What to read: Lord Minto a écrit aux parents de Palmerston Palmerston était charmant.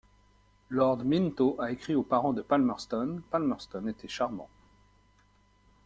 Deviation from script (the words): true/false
false